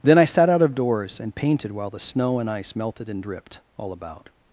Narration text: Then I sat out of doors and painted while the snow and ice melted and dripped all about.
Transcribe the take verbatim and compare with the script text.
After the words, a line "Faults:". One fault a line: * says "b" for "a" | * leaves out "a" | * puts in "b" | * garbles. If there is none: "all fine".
Then I sat out of doors and painted while the snow and ice melted and dripped all about.
Faults:
all fine